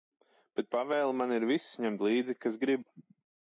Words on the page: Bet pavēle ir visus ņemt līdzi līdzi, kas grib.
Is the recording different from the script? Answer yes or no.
yes